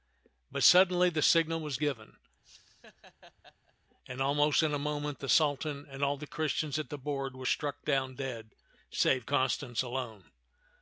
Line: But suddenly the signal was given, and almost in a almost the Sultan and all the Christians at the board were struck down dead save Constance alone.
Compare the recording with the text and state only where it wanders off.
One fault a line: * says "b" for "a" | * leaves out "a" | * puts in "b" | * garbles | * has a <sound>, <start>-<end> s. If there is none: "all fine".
* has a laugh, 2.4-3.7 s
* says "moment" for "almost"